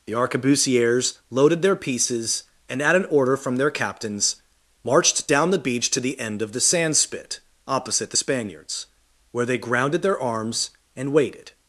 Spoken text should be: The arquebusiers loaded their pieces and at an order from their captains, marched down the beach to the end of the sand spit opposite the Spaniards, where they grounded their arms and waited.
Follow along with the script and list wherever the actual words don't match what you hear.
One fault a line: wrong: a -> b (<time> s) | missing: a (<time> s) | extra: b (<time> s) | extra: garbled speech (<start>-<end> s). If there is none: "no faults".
no faults